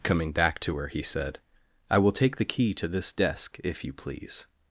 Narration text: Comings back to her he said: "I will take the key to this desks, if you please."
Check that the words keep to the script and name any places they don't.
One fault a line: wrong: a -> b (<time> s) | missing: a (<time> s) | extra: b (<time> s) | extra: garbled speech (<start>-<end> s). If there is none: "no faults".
wrong: Comings -> Coming (0.0 s)
wrong: desks -> desk (3.1 s)